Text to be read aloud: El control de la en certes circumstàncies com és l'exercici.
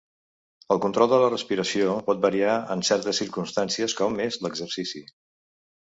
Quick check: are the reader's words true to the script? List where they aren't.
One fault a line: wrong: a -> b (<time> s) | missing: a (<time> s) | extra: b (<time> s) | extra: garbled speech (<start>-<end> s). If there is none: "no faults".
extra: respiració pot variar (1.3 s)